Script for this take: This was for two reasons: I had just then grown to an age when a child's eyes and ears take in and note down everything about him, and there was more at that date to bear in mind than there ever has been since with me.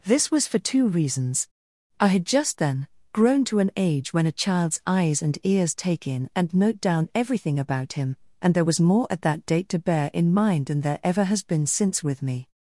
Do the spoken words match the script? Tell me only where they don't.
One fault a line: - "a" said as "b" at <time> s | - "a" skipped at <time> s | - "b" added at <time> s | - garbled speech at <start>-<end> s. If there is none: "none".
none